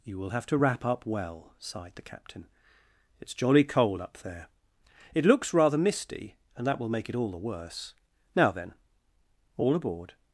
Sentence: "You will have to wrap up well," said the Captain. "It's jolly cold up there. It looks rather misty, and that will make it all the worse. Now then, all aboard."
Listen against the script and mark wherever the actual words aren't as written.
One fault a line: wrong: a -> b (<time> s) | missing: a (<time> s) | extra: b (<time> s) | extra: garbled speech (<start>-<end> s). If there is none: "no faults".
wrong: said -> sighed (1.6 s)